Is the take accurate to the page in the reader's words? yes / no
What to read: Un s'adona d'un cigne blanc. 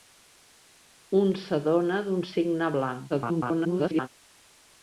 no